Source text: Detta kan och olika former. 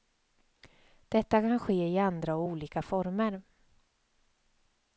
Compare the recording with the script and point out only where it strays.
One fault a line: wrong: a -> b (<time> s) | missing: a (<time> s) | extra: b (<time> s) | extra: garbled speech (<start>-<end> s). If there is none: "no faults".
extra: ske i andra (1.6 s)